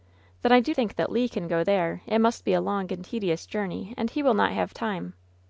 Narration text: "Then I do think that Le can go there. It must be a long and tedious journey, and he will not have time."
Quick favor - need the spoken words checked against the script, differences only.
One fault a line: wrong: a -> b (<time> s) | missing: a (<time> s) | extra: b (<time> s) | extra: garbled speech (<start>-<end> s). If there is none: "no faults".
no faults